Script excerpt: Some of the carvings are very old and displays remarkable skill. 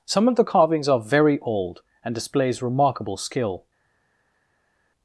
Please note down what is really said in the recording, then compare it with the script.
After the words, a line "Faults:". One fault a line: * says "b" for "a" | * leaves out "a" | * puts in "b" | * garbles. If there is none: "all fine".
Some of the carvings are very old and displays remarkable skill.
Faults:
all fine